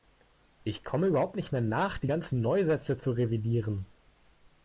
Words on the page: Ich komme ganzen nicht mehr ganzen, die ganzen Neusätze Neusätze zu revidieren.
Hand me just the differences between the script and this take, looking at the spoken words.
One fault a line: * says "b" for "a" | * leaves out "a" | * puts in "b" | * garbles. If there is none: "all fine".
* says "überhaupt" for "ganzen"
* says "nach" for "ganzen"
* leaves out "Neusätze"